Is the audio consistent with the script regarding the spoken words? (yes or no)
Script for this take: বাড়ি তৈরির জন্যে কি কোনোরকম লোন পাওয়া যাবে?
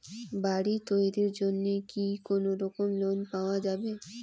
yes